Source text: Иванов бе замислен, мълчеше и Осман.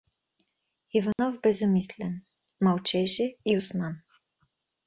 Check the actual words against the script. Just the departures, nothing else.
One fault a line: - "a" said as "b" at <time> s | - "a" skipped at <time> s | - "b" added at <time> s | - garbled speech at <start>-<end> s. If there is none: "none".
none